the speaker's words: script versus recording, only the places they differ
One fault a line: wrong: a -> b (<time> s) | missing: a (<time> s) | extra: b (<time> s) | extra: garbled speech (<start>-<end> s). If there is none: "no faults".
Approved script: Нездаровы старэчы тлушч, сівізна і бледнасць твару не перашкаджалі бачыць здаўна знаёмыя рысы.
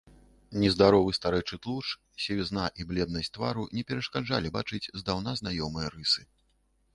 no faults